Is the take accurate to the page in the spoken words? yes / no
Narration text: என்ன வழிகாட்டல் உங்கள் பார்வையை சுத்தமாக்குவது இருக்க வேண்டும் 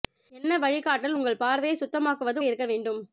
yes